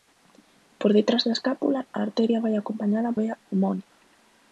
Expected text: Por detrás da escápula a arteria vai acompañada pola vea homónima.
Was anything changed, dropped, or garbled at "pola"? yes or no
yes